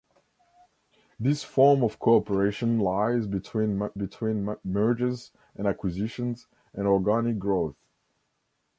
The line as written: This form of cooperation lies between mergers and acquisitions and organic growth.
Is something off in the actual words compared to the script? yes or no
yes